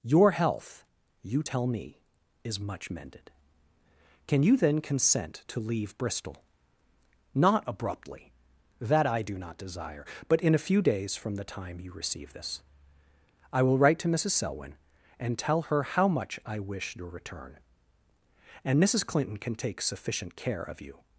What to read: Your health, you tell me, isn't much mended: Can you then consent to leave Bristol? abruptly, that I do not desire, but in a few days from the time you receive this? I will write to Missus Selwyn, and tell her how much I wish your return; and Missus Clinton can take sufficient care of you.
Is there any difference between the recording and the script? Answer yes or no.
yes